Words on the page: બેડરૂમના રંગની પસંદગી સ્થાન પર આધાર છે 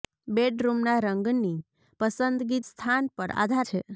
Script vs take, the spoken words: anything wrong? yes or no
no